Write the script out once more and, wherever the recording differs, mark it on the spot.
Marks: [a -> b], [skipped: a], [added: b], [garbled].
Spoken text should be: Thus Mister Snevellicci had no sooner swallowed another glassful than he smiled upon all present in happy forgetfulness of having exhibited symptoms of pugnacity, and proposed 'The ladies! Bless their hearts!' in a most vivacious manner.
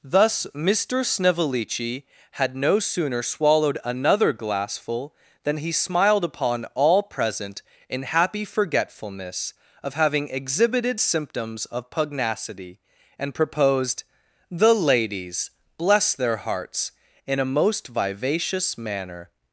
Thus Mister Snevellicci had no sooner swallowed another glassful than he smiled upon all present in happy forgetfulness of having exhibited symptoms of pugnacity, and proposed 'The ladies! Bless their hearts!' in a most vivacious manner.